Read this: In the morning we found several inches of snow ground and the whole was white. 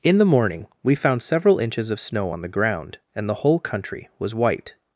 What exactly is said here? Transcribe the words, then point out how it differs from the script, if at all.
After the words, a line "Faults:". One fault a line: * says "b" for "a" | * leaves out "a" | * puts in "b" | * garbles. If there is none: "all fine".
In the morning we found several inches of snow on the ground and the whole country was white.
Faults:
* puts in "on the"
* puts in "country"